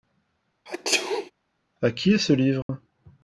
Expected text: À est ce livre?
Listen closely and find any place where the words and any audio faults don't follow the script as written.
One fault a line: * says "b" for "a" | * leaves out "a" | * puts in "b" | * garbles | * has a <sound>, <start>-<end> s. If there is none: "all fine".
* has a sneeze, 0.7-1.3 s
* puts in "qui"
* has a dropout, 2.6-2.7 s